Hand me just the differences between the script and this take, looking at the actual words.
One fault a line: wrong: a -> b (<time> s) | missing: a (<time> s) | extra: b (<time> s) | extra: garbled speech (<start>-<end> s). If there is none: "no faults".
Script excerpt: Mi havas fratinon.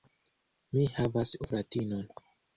no faults